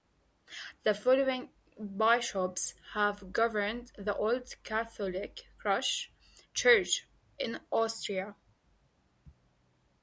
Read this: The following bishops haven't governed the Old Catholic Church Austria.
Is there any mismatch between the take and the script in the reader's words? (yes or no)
yes